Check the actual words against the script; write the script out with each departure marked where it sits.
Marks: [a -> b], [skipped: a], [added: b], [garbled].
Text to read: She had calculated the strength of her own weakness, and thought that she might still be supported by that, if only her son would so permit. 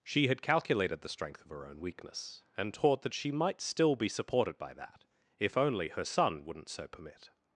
She had calculated the strength of her own weakness, and [thought -> taught] that she might still be supported by that, if only her son [would -> wouldn't] so permit.